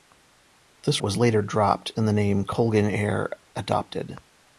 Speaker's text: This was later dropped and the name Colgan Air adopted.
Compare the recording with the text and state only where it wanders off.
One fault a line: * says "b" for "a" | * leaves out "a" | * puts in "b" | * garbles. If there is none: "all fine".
all fine